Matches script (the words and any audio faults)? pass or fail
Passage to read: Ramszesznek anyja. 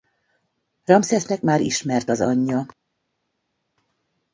fail